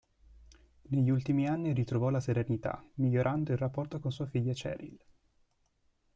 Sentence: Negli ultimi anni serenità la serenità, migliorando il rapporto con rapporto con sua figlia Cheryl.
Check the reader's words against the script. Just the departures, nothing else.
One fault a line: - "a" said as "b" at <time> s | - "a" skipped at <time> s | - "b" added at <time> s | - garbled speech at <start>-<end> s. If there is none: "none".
- "serenità" said as "ritrovò" at 1.7 s
- "rapporto con" skipped at 4.1 s